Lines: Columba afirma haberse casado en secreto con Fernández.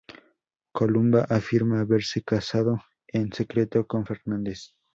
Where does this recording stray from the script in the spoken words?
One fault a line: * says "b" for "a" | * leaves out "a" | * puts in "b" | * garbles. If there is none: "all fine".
all fine